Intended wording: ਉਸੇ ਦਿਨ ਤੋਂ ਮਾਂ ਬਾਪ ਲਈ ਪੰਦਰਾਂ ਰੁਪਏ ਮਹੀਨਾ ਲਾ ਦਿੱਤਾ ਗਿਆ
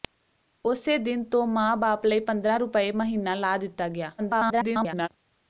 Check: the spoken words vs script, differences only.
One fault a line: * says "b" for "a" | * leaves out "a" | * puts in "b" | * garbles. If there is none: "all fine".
* garbles